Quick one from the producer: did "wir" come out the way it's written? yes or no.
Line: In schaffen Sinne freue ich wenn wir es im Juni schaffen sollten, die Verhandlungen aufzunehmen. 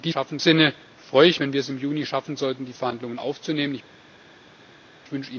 yes